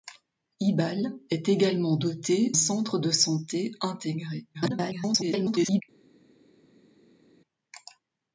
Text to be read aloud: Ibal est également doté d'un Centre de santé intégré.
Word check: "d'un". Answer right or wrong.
wrong